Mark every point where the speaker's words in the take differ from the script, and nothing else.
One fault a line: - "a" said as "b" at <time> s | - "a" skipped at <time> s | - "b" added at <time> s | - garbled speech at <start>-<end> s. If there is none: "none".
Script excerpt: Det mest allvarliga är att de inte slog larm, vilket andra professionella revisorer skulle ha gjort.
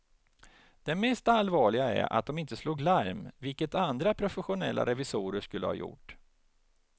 none